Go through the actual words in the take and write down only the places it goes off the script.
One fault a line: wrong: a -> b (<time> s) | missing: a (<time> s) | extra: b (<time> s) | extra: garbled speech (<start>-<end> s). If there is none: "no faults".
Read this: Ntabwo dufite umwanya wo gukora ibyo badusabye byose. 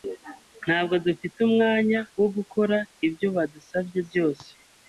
no faults